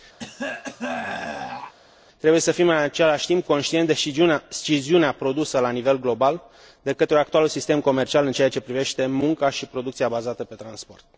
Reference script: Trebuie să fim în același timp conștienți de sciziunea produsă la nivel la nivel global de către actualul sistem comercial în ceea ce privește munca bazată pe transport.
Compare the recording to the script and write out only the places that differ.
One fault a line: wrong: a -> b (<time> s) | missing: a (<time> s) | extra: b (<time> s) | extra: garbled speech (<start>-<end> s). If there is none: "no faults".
missing: la nivel (6.0 s)
extra: și producția (9.5 s)